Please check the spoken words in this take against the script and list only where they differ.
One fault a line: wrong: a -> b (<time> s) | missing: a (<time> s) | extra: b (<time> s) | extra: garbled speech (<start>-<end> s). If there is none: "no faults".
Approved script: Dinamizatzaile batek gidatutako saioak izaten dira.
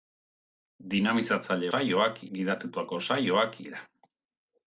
wrong: batek -> saioak (1.7 s)
missing: izaten (3.6 s)